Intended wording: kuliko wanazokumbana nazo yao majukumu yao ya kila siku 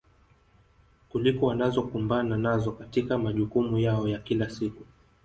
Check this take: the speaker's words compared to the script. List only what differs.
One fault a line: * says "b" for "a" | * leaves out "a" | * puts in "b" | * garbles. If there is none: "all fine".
* says "katika" for "yao"